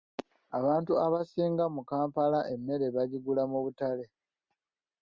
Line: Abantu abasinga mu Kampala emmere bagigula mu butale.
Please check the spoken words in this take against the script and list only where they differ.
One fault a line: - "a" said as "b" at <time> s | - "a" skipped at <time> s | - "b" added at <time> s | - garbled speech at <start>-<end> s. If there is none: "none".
none